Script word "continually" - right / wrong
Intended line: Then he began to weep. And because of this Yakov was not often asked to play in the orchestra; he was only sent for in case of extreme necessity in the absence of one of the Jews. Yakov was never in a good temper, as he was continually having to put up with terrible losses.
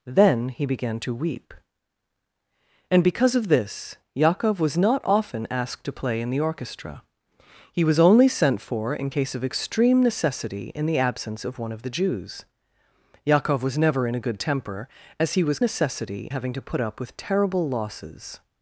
wrong